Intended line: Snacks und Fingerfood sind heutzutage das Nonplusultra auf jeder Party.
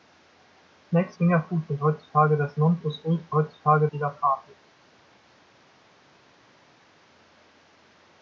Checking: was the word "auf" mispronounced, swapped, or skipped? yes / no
yes